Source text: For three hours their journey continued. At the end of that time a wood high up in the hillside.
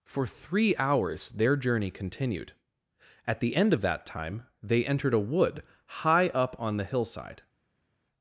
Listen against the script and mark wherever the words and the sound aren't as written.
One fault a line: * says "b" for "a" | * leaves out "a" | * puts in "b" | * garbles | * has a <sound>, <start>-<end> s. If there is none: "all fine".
* puts in "they entered"
* says "on" for "in"